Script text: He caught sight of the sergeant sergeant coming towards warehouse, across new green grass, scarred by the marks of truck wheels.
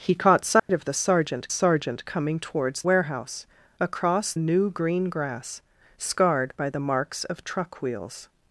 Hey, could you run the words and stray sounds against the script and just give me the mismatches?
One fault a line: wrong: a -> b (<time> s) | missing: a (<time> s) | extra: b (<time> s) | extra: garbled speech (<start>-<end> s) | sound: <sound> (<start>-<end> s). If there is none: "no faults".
sound: dropout (0.6-0.7 s)